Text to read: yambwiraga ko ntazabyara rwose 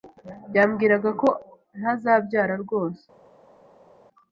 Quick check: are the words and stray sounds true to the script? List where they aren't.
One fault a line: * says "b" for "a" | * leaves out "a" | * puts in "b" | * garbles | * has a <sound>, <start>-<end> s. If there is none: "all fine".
all fine